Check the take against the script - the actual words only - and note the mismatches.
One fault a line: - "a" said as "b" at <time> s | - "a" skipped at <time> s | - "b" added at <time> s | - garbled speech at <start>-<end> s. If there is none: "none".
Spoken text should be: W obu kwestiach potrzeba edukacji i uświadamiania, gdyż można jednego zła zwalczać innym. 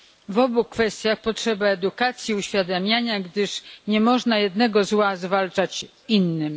- "nie" added at 3.9 s